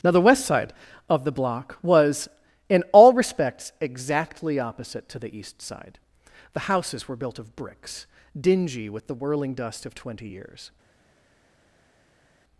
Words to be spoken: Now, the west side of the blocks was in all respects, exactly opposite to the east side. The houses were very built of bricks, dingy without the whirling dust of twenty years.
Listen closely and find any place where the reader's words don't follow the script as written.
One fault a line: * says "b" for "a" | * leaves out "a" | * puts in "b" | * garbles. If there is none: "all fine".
* says "block" for "blocks"
* leaves out "very"
* says "with" for "without"